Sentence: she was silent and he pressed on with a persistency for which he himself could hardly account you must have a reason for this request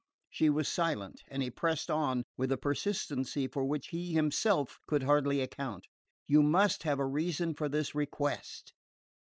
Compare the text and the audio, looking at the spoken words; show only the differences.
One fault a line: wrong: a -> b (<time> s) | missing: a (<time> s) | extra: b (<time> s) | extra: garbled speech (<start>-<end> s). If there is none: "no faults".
no faults